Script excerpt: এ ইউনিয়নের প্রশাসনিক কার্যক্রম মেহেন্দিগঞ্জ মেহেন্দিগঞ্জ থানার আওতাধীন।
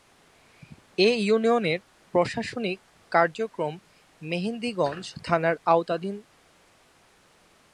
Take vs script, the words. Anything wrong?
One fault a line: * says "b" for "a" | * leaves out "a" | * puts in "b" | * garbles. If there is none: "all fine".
* leaves out "মেহেন্দিগঞ্জ"